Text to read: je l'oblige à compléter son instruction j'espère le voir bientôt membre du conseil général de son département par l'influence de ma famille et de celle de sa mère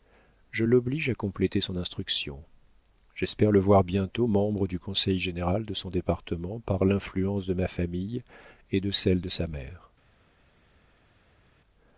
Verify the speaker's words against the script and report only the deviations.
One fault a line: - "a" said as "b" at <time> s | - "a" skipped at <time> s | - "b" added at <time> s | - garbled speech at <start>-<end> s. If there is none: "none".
none